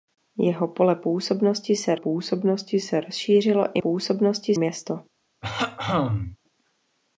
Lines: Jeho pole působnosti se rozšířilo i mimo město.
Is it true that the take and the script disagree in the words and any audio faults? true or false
true